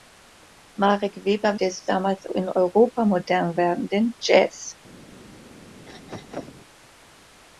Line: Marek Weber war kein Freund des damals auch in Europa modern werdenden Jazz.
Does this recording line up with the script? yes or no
no